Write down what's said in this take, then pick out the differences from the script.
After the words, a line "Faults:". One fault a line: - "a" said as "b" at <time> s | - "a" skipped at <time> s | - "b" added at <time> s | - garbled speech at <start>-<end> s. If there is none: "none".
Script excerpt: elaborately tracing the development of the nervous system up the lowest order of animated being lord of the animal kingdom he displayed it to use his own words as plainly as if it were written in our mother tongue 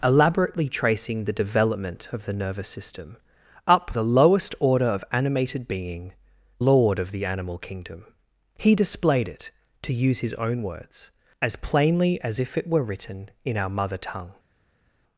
elaborately tracing the development of the nervous system up the lowest order of animated being lord of the animal kingdom he displayed it to use his own words as plainly as if it were written in our mother tongue
Faults:
none